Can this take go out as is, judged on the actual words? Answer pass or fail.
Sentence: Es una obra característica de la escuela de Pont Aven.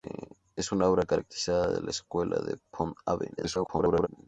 fail